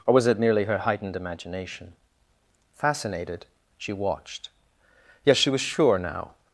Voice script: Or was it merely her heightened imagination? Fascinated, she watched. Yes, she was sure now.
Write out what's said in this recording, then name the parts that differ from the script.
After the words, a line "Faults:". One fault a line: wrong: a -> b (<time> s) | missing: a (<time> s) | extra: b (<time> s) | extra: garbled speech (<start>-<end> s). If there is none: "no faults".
Or was it merely her heightened imagination? Fascinated, she watched. Yes, she was sure now.
Faults:
no faults